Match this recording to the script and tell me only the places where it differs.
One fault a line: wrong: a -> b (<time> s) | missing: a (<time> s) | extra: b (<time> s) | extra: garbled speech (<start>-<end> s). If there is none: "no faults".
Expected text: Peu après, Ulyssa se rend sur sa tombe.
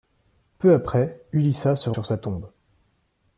missing: rend (1.9 s)